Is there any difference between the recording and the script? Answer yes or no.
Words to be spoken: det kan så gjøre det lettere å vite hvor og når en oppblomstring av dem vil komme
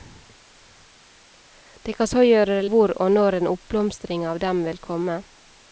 yes